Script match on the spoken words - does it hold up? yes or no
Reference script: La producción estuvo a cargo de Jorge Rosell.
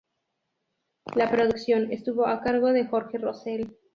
yes